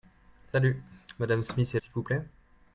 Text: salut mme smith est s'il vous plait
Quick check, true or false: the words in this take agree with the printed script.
true